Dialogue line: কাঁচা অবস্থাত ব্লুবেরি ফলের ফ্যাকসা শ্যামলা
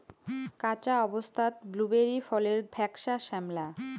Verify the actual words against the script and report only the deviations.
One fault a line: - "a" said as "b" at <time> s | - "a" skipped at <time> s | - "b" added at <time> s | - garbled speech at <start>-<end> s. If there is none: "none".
none